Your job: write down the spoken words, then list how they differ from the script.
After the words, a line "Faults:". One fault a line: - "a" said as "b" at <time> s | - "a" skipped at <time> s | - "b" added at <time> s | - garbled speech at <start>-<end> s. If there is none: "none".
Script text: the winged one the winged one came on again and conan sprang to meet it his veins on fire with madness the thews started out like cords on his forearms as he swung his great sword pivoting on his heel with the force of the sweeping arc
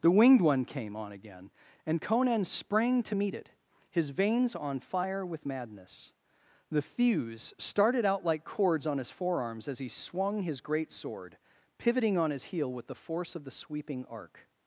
the winged one came on again and conan sprang to meet it his veins on fire with madness the thews started out like cords on his forearms as he swung his great sword pivoting on his heel with the force of the sweeping arc
Faults:
- "the winged one" skipped at 0.7 s